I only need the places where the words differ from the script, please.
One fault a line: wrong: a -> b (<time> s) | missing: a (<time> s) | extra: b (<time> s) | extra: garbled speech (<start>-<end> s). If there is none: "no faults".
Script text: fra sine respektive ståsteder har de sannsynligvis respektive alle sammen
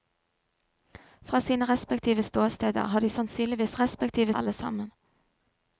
no faults